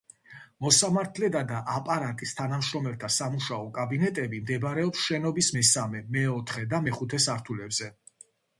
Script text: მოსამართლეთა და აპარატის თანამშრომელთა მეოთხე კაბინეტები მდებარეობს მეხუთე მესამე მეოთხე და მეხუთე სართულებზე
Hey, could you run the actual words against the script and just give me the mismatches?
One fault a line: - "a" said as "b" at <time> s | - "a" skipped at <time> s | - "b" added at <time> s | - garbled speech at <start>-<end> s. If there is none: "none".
- "მეოთხე" said as "სამუშაო" at 3.2 s
- "მეხუთე" said as "შენობის" at 5.1 s